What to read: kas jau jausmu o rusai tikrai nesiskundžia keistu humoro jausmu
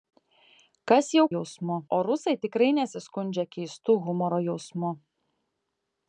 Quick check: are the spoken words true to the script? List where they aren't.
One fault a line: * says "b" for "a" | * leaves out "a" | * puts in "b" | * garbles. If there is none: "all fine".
all fine